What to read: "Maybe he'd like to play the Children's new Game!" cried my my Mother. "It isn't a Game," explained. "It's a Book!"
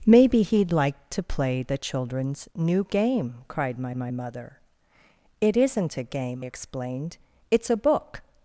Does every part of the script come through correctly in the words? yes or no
yes